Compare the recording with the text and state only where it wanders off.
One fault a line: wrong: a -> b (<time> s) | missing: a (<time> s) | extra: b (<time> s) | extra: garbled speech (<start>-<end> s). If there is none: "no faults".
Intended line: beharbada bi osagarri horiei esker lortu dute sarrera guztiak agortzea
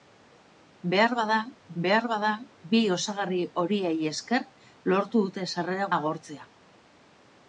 extra: beharbada (1.8 s)
missing: guztiak (5.9 s)